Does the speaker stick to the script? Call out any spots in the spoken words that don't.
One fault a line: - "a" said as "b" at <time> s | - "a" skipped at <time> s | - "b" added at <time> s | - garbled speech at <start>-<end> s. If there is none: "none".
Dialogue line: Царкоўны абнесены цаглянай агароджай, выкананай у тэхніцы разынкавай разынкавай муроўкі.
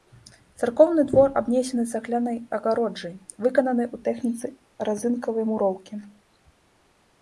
- "двор" added at 1.1 s
- "разынкавай" skipped at 5.4 s